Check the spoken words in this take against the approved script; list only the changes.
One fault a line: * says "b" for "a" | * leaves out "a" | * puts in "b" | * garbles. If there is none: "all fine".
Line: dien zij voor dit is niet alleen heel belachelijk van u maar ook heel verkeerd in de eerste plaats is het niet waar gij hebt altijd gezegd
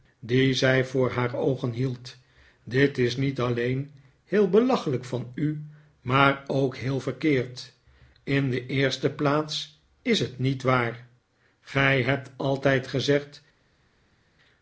* puts in "haar oogen hield"